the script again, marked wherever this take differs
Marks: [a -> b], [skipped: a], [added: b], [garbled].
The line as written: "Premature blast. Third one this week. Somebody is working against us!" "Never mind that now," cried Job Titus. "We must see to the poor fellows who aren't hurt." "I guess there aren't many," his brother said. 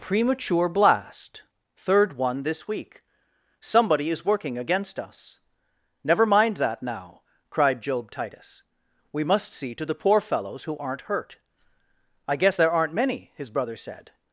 "Premature blast. Third one this week. Somebody is working against us!" "Never mind that now," cried Job Titus. "We must see to the poor fellows who aren't hurt." "I guess there aren't many," his brother said.